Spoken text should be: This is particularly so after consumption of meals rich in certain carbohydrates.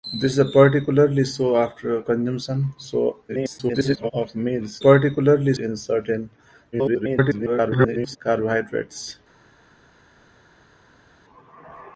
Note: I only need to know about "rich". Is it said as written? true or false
false